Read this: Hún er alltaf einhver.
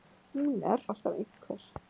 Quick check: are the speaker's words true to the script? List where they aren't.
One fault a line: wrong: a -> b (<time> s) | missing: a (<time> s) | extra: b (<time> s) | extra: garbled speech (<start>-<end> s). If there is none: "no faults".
no faults